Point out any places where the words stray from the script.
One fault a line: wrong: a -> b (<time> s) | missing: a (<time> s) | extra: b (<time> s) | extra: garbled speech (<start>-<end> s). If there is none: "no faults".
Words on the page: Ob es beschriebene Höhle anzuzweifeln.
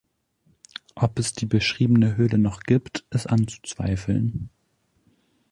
extra: die (1.3 s)
extra: noch gibt ist (2.4 s)